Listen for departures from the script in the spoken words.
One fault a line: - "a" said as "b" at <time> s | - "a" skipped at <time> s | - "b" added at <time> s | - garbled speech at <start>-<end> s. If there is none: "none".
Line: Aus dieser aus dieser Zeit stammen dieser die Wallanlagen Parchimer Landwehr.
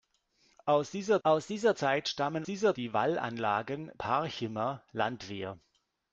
none